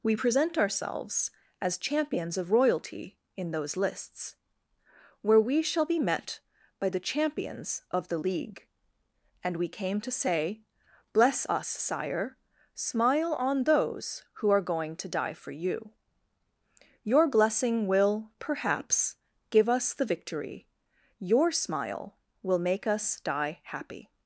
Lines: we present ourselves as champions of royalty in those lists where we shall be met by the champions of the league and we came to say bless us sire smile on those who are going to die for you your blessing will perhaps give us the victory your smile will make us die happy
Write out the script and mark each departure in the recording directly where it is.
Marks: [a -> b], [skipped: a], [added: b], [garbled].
we present ourselves as champions of royalty in those lists where we shall be met by the champions of the league and we came to say bless us sire smile on those who are going to die for you your blessing will perhaps give us the victory your smile will make us die happy